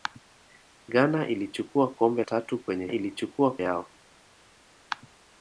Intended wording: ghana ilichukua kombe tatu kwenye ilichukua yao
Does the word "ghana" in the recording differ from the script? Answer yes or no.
no